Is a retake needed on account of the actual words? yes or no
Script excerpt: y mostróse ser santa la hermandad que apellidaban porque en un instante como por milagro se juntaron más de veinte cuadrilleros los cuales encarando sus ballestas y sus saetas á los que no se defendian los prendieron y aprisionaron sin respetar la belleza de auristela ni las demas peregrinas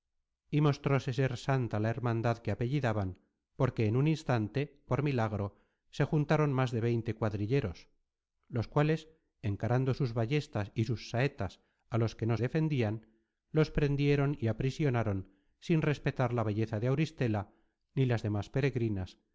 yes